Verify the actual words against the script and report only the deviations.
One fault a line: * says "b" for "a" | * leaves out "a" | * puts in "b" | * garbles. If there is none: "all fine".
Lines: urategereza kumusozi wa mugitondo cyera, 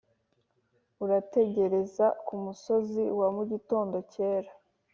all fine